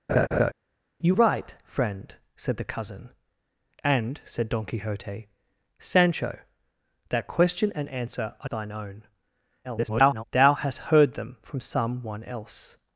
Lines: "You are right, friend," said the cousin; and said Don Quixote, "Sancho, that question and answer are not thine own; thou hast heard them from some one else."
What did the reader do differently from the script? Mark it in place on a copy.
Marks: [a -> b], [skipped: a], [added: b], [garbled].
"You [skipped: are] right, friend," said the cousin; and said Don Quixote, "Sancho, that question and answer are [skipped: not] thine own; [garbled] thou hast heard them from some one else."